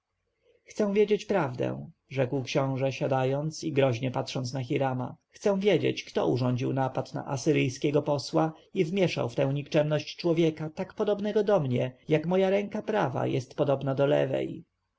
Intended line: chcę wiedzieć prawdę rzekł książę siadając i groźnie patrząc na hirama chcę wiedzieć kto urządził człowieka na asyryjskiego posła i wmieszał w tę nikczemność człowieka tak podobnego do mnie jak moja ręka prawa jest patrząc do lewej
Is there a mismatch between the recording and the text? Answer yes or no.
yes